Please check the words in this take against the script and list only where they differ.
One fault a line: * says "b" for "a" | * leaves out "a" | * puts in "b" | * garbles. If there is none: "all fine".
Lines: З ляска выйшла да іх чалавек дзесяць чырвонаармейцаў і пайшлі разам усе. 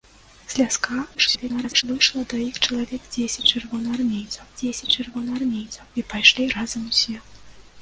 * garbles
* puts in "дзесяць чырвонаармейцаў"